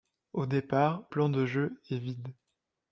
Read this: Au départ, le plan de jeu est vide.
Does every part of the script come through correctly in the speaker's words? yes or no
no